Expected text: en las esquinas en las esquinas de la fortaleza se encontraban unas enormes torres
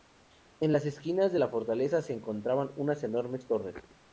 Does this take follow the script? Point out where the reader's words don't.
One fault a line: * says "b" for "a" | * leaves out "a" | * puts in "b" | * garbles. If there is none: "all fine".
* leaves out "en las esquinas"